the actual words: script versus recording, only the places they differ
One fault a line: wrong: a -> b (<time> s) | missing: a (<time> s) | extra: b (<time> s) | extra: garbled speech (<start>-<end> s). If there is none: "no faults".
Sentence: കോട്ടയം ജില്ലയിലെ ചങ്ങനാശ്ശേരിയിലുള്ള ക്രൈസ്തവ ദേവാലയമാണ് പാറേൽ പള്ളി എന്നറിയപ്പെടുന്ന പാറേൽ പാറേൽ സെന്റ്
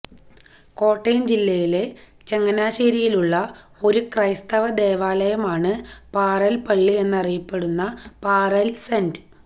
extra: ഒരു (3.8 s)
missing: പാറേൽ (8.7 s)